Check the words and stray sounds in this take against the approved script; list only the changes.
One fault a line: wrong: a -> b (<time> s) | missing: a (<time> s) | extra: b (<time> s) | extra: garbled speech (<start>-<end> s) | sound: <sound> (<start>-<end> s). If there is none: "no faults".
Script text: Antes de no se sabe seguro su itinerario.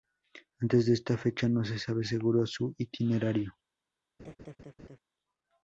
extra: esta fecha (0.9 s)
sound: laugh (4.2-5.0 s)